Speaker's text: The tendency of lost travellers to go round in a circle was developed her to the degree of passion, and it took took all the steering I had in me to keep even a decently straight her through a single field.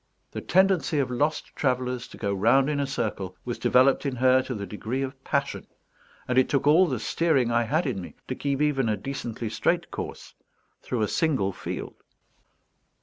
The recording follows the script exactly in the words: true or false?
false